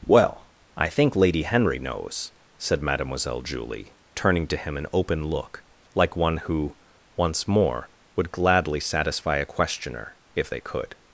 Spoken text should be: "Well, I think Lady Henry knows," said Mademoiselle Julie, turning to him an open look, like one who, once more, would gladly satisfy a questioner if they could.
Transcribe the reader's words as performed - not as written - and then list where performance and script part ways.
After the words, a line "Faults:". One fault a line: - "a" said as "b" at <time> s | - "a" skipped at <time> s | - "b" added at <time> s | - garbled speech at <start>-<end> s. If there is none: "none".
"Well, I think Lady Henry knows," said Mademoiselle Julie, turning to him an open look, like one who, once more, would gladly satisfy a questioner if they could.
Faults:
none